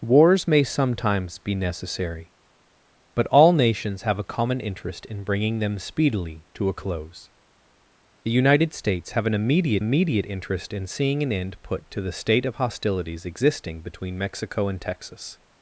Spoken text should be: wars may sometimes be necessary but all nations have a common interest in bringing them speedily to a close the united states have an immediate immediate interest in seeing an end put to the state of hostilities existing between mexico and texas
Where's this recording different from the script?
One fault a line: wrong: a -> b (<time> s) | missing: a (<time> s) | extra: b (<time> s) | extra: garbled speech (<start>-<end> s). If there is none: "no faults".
no faults